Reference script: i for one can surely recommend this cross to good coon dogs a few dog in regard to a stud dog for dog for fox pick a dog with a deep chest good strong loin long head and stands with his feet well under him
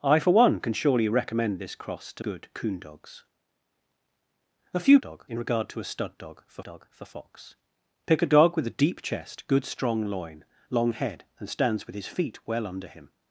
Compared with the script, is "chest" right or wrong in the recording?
right